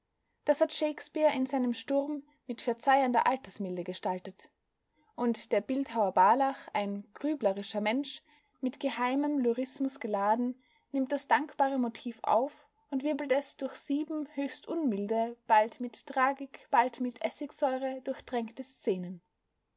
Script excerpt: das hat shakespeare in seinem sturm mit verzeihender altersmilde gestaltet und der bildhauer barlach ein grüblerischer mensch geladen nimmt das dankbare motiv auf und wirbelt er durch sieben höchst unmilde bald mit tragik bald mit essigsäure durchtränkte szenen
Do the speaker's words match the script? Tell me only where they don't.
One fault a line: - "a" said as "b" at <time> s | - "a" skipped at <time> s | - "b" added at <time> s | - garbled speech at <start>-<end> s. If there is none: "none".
- "mit geheimem lyrismus" added at 8.6 s
- "er" said as "es" at 13.3 s